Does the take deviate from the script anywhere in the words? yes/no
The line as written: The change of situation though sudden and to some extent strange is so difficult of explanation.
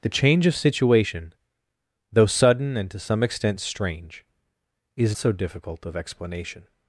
no